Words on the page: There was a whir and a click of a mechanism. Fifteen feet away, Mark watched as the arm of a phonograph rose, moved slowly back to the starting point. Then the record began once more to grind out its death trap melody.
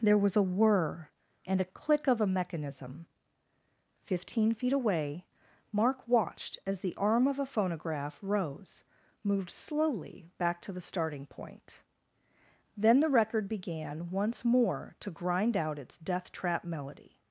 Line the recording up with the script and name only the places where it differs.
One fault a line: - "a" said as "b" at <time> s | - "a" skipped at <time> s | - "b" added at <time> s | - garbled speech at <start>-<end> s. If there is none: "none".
none